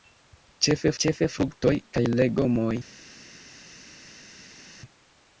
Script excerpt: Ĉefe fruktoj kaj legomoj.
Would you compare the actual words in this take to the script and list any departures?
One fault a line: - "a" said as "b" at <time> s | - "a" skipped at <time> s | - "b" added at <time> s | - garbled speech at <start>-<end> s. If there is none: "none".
- "ĉefe" added at 1.0 s